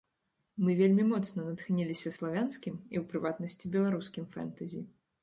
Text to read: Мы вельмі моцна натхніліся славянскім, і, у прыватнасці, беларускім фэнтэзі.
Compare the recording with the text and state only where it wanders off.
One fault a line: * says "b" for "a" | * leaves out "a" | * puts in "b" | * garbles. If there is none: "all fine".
all fine